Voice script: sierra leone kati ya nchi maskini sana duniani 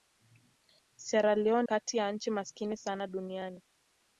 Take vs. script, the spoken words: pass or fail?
pass